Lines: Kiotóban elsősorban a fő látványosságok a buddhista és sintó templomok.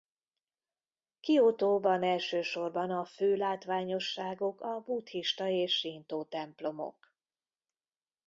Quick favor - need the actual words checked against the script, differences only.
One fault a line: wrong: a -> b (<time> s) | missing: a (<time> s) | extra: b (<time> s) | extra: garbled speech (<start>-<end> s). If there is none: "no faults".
no faults